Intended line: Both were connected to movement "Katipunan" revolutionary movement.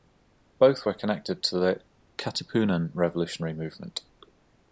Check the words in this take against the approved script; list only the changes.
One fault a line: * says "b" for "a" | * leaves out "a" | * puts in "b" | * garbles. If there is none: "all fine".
* says "the" for "movement"